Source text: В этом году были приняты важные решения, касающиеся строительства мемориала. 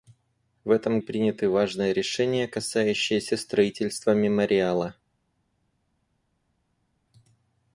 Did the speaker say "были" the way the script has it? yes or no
no